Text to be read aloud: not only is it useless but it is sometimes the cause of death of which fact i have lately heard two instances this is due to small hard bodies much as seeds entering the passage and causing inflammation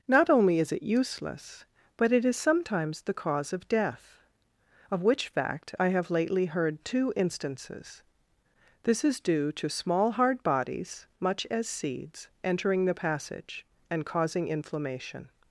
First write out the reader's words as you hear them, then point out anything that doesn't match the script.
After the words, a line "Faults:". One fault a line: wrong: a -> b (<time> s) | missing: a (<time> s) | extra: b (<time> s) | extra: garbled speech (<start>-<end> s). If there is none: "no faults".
not only is it useless but it is sometimes the cause of death of which fact i have lately heard two instances this is due to small hard bodies much as seeds entering the passage and causing inflammation
Faults:
no faults